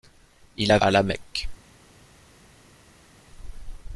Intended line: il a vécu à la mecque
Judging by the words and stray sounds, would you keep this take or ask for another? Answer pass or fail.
fail